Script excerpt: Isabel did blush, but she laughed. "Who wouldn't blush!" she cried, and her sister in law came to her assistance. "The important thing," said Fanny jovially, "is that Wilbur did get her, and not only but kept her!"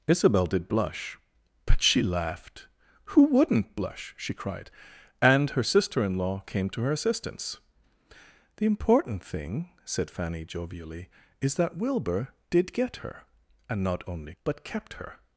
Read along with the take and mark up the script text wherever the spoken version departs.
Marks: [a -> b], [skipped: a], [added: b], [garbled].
Isabel did blush, but she laughed. "Who wouldn't blush!" she cried, and her sister in law came to her assistance. "The important thing," said Fanny jovially, "is that Wilbur did get her, and not only but kept her!"